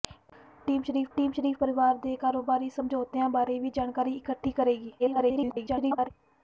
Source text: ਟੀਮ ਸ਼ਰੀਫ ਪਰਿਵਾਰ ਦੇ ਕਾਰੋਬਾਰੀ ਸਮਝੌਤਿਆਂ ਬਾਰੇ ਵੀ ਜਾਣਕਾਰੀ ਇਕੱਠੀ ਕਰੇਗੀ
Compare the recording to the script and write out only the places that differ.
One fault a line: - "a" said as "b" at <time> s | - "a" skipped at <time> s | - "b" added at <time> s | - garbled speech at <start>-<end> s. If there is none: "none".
- "ਟੀਮ ਸ਼ਰੀਫ" added at 1.2 s
- garbled speech at 5.0-6.1 s